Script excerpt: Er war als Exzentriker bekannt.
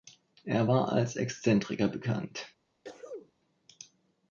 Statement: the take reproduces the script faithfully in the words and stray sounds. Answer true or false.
false